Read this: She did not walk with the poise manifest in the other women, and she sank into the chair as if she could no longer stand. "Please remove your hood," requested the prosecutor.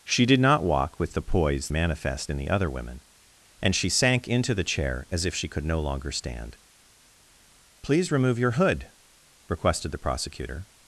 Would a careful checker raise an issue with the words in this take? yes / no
no